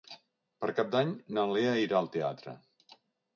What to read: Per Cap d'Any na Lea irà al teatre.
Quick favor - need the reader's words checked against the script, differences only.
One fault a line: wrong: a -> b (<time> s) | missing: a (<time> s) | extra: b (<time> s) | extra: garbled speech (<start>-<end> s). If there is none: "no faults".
no faults